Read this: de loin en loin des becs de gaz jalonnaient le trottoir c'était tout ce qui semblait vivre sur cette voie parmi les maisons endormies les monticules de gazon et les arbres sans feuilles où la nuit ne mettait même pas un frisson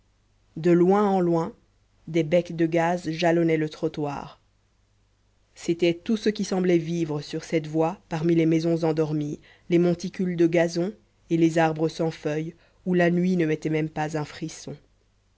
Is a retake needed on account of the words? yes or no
no